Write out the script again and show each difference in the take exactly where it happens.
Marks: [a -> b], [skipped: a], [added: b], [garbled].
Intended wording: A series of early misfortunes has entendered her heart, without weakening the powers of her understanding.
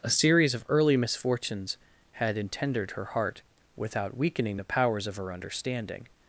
A series of early misfortunes [has -> had] entendered her heart, without weakening the powers of her understanding.